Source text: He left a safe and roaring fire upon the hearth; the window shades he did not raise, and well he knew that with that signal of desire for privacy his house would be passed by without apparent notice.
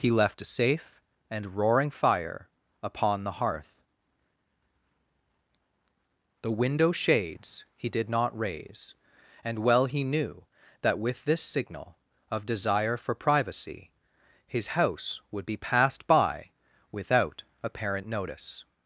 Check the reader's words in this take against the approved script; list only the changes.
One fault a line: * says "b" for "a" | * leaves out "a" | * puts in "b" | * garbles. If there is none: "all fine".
* says "this" for "that"